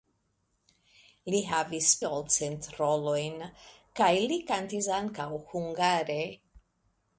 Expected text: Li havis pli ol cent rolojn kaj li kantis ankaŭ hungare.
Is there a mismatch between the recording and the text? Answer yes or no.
yes